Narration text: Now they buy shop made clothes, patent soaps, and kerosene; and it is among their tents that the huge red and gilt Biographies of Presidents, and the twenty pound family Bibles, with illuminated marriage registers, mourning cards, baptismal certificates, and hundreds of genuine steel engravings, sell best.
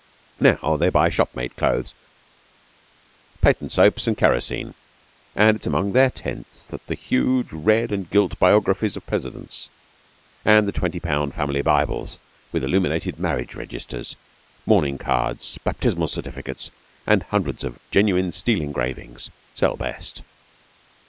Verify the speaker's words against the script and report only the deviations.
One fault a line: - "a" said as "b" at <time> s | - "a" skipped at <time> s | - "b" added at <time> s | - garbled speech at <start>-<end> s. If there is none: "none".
none